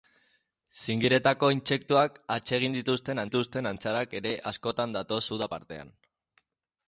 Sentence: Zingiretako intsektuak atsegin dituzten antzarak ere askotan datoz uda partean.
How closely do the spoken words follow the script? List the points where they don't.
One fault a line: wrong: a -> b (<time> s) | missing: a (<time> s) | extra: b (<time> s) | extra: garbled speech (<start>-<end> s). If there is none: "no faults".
extra: dituzten (3.2 s)